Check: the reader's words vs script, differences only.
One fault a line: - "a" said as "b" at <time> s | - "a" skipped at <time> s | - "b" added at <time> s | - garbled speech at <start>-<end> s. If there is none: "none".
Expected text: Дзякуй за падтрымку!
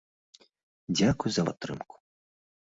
none